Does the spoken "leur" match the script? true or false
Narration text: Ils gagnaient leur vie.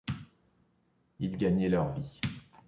true